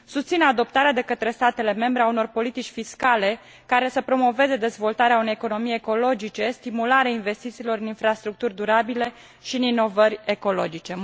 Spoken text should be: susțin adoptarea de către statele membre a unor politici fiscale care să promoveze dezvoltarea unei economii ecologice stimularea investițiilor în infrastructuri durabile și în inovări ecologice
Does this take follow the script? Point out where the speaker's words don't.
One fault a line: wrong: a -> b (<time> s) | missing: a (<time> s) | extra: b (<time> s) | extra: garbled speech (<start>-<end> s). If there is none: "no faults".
no faults